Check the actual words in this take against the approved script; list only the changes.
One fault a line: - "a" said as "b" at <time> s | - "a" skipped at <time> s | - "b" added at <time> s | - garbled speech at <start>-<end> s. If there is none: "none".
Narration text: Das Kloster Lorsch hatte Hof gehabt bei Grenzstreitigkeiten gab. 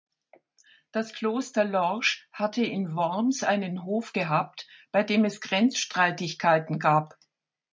- "in Worms einen" added at 2.6 s
- "dem es" added at 5.0 s